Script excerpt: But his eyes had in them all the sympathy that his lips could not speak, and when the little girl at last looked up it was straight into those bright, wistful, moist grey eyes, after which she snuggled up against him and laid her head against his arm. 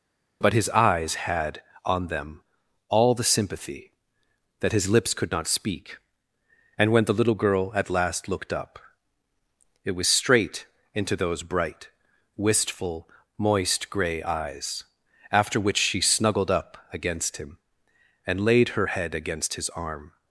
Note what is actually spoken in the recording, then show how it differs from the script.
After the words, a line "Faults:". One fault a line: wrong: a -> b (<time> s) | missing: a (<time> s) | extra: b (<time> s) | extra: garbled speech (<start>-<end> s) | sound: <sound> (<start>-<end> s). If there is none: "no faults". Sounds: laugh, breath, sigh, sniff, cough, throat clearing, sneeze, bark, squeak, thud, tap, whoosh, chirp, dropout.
But his eyes had on them all the sympathy that his lips could not speak, and when the little girl at last looked up it was straight into those bright, wistful, moist grey eyes, after which she snuggled up against him and laid her head against his arm.
Faults:
wrong: in -> on (1.9 s)